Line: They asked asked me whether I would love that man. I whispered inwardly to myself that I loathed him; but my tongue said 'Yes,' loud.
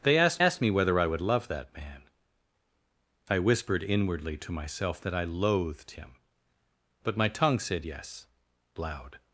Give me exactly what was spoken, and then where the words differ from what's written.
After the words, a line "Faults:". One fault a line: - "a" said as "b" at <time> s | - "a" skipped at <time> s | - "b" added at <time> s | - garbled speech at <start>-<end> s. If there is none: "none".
They asked asked me whether I would love that man. I whispered inwardly to myself that I loathed him; but my tongue said 'Yes,' loud.
Faults:
none